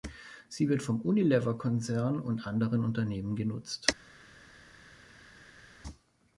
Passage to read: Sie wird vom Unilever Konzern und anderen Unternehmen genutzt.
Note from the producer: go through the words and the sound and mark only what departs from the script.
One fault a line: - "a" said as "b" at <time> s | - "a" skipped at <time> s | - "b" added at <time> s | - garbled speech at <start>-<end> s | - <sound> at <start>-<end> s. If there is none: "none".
none